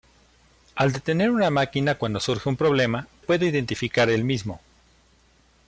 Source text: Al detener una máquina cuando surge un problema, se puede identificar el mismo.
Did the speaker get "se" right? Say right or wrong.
wrong